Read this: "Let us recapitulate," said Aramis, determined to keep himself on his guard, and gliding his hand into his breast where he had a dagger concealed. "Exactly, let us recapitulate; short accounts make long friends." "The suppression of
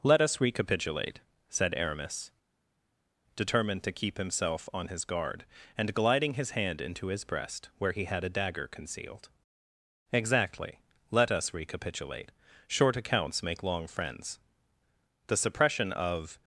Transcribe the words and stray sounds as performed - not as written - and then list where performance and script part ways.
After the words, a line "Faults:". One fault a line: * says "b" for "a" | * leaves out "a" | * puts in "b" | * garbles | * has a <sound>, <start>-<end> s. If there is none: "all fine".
"Let us recapitulate," said Aramis, determined to keep himself on his guard, and gliding his hand into his breast where he had a dagger concealed. "Exactly, let us recapitulate; short accounts make long friends." "The suppression of
Faults:
all fine